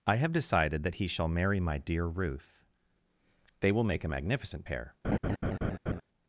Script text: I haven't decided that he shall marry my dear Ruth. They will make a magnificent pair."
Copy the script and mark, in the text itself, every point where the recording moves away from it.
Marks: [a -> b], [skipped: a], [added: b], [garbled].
I [haven't -> have] decided that he shall marry my dear Ruth. They will make a magnificent pair."